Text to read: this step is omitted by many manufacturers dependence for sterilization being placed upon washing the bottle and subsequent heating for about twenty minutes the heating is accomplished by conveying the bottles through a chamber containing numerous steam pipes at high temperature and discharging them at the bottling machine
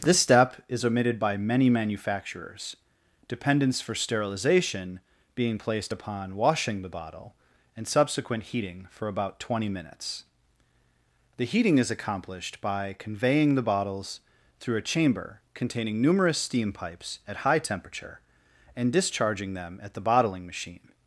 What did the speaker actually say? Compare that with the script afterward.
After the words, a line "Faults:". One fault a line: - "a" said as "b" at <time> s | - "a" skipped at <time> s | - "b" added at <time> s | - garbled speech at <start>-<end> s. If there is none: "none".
this step is omitted by many manufacturers dependence for sterilization being placed upon washing the bottle and subsequent heating for about twenty minutes the heating is accomplished by conveying the bottles through a chamber containing numerous steam pipes at high temperature and discharging them at the bottling machine
Faults:
none